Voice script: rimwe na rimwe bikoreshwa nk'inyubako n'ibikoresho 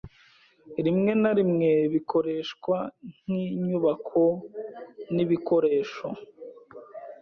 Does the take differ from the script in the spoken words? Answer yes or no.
no